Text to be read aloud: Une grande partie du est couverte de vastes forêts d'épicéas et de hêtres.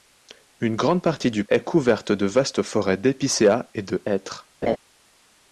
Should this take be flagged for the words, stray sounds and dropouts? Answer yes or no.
yes